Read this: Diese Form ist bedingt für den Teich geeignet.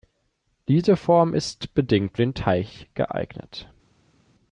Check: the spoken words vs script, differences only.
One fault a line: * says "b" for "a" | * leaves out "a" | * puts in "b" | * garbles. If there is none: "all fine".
* leaves out "für"